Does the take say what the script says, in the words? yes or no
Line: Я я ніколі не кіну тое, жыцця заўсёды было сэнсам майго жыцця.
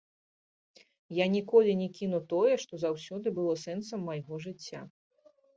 no